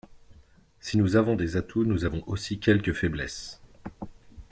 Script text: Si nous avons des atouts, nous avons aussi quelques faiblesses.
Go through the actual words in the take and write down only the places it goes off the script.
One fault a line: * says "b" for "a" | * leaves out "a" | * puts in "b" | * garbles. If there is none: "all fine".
all fine